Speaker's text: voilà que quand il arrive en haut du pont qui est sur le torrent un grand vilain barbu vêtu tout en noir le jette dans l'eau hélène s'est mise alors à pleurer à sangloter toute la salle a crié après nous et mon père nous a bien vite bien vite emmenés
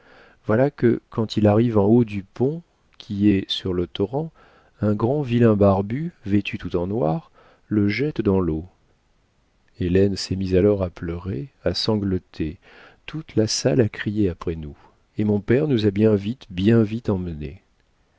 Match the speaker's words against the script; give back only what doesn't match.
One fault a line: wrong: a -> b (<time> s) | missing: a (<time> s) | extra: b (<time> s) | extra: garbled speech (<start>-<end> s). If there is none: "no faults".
no faults